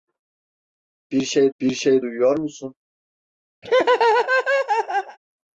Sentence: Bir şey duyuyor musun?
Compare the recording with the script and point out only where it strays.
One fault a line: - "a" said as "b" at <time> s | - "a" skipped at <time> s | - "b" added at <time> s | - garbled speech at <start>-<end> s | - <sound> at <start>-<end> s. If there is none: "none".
- "bir şey" added at 1.6 s
- laugh at 3.6-5.2 s